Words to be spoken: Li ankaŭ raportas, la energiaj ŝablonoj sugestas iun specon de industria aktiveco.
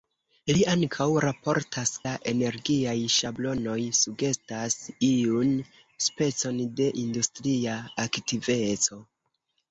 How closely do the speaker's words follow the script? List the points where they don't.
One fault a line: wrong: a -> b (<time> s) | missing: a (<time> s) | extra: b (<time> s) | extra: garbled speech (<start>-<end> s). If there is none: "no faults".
no faults